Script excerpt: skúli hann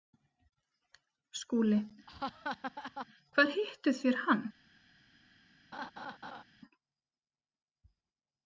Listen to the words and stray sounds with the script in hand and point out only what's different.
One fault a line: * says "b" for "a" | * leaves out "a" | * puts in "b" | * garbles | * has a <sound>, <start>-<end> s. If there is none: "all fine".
* has a laugh, 2.1-3.1 s
* puts in "hvar hittuð þér"
* has a laugh, 5.7-6.4 s